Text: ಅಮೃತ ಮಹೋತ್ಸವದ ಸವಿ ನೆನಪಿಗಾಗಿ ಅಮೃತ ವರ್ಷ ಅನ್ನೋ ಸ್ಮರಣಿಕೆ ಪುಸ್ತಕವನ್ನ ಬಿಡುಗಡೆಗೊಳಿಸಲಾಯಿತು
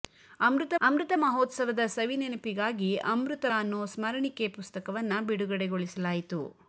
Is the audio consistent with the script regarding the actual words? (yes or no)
no